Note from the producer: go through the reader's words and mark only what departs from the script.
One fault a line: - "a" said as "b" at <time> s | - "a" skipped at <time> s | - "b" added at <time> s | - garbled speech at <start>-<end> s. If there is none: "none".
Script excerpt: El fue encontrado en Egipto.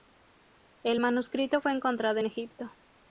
- "manuscrito" added at 1.0 s